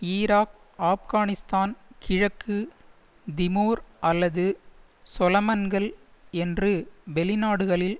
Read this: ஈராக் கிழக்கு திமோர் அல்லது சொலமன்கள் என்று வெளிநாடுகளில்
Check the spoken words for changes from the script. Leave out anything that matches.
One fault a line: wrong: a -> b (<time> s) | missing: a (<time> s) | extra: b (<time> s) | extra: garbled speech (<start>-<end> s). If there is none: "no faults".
extra: ஆப்கானிஸ்தான் (0.8 s)